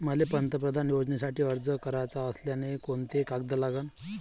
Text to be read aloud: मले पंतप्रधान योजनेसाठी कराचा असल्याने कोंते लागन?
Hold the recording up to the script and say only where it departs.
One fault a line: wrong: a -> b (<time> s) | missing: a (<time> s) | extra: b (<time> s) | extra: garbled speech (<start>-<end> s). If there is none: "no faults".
extra: अर्ज (1.4 s)
extra: कागद (3.2 s)